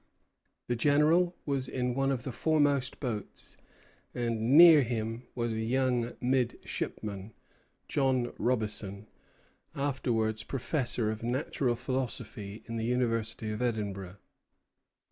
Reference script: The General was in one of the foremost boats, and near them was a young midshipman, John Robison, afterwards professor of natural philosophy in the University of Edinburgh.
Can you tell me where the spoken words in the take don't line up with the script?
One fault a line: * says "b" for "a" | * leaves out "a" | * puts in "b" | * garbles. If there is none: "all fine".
* says "him" for "them"